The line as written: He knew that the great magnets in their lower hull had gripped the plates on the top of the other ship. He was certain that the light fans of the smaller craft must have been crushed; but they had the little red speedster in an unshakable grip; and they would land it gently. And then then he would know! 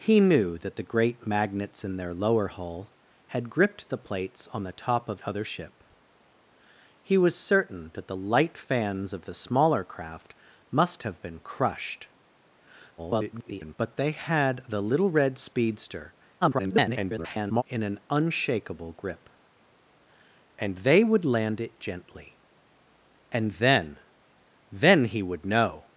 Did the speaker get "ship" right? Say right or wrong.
right